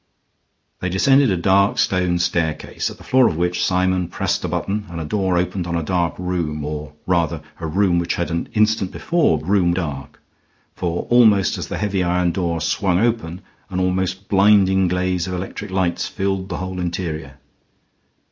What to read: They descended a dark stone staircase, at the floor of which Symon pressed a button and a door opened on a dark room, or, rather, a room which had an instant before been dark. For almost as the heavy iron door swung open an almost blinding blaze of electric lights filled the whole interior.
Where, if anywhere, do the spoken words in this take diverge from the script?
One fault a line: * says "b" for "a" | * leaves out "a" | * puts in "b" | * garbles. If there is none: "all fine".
* says "room" for "been"